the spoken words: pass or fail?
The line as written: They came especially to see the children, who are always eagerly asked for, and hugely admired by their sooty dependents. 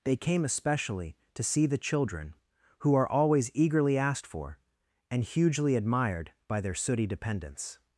pass